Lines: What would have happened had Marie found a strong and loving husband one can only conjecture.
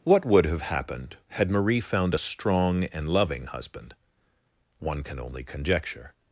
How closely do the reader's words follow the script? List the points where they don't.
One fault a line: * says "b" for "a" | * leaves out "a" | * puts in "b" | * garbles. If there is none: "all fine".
all fine